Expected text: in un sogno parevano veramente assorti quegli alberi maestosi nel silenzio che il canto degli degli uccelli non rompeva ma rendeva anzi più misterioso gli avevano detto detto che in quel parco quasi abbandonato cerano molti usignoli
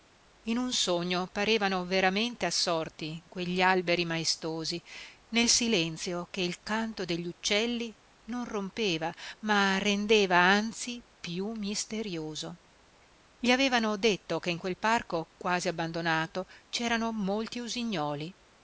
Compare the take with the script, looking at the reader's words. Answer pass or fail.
fail